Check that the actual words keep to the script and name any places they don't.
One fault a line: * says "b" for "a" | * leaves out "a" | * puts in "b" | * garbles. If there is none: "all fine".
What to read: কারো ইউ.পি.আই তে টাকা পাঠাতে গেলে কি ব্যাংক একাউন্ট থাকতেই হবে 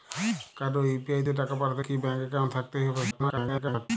* leaves out "গেলে"
* garbles